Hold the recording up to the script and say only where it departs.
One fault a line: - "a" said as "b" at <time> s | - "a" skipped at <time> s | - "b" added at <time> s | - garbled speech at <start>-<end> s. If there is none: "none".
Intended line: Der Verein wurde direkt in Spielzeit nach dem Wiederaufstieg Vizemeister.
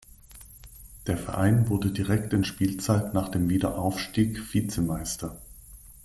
none